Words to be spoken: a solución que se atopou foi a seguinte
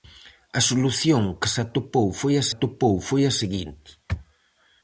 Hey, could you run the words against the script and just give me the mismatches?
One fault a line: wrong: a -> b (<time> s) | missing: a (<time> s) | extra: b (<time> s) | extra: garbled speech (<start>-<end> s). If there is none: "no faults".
extra: atopou foi a (2.5 s)